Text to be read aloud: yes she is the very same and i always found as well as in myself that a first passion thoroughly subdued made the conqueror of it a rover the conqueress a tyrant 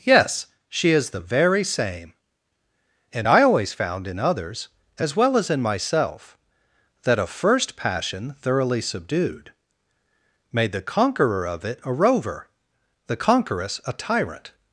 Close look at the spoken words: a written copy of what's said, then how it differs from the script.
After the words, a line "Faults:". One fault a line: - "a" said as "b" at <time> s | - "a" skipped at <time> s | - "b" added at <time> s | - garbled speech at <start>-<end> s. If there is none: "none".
yes she is the very same and i always found in others as well as in myself that a first passion thoroughly subdued made the conqueror of it a rover the conqueress a tyrant
Faults:
- "in others" added at 4.1 s